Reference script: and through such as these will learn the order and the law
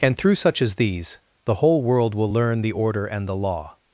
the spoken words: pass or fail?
fail